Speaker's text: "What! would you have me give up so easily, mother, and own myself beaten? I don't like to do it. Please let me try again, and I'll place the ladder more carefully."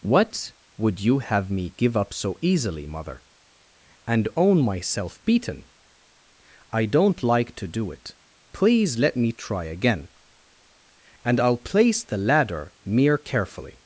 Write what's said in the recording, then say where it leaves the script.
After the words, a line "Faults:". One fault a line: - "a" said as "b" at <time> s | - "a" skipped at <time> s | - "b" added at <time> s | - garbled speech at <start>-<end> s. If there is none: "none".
"What! would you have me give up so easily, mother, and own myself beaten? I don't like to do it. Please let me try again, and I'll place the ladder mere carefully."
Faults:
- "more" said as "mere" at 12.8 s